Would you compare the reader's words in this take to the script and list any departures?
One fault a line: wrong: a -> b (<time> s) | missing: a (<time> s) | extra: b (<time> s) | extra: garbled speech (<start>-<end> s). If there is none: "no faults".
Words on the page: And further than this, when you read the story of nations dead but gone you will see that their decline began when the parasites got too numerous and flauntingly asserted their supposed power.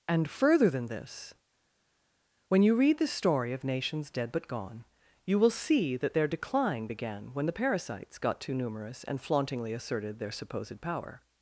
no faults